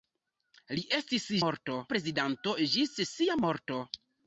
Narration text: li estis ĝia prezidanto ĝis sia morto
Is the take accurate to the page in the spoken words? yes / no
no